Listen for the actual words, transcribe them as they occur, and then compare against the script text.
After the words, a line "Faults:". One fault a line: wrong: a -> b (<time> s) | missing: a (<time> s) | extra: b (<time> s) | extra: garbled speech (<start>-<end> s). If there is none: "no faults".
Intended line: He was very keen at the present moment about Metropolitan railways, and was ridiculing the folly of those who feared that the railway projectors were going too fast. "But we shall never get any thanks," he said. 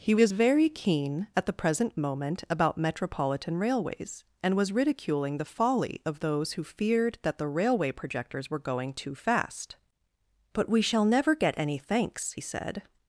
He was very keen at the present moment about Metropolitan railways, and was ridiculing the folly of those who feared that the railway projectors were going too fast. "But we shall never get any thanks," said.
Faults:
missing: he (12.3 s)